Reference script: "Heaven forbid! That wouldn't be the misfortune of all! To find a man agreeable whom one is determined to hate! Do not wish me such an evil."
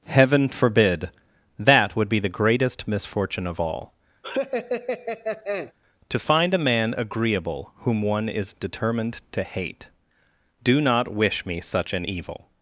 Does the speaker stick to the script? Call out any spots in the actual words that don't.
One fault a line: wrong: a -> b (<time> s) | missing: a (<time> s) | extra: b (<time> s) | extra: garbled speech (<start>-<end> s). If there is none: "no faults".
wrong: wouldn't -> would (1.9 s)
extra: greatest (2.3 s)